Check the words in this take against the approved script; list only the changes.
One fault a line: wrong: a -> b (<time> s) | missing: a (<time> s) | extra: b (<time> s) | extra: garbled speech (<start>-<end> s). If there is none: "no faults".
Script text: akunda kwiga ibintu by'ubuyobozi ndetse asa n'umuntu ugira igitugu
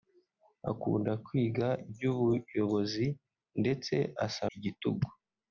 missing: ibintu (1.7 s)
missing: n'umuntu ugira (4.4 s)